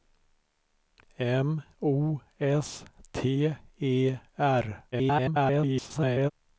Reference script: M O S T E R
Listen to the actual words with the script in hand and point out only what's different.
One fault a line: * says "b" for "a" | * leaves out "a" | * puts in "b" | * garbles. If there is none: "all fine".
* garbles